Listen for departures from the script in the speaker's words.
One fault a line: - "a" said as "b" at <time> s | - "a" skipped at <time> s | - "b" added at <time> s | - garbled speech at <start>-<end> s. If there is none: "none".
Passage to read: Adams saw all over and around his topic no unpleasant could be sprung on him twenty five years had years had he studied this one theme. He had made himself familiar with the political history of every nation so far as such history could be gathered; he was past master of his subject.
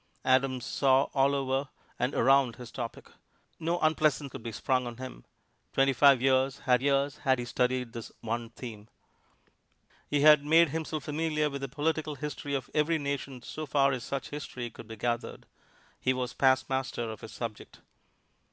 none